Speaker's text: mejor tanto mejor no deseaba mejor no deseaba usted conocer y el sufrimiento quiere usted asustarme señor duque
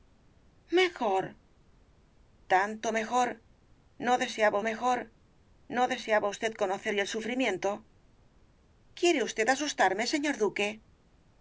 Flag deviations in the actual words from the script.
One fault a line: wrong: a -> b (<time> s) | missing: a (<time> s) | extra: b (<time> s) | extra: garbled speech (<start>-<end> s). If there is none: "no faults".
no faults